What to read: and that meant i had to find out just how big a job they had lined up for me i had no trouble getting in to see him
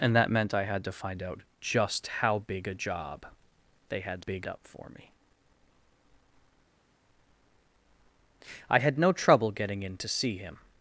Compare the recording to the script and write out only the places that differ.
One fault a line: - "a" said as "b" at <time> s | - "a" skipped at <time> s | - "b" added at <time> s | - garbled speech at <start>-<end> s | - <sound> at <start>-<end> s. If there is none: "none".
- "lined" said as "big" at 4.2 s